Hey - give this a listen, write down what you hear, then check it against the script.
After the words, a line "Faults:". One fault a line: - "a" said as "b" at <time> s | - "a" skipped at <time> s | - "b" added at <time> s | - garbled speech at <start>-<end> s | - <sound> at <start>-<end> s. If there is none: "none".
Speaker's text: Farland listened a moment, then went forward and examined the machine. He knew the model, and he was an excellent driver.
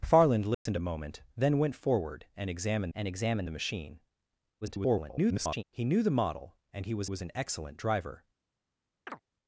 Farland listened a moment, then went forward and examined and examined the machine. [garbled] He knew the model, and he was was an excellent driver.
Faults:
- dropout at 0.5-0.7 s
- "and examined" added at 2.9 s
- garbled speech at 4.6-5.6 s
- "was" added at 7.0 s
- chirp at 9.1-9.2 s